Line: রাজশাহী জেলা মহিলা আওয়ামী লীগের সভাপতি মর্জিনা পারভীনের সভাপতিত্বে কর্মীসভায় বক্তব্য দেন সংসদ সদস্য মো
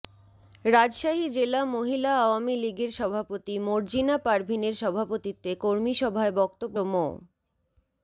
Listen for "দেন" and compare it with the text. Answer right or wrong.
wrong